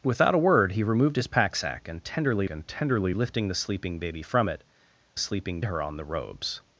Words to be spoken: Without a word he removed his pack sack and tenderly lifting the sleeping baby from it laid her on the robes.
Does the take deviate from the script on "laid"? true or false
true